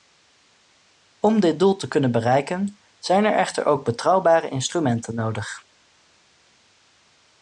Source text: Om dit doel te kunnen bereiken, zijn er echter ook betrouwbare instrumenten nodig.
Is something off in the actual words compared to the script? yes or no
no